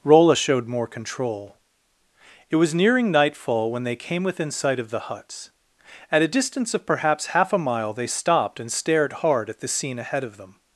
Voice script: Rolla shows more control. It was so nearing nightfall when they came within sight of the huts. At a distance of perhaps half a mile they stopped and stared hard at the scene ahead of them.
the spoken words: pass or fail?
fail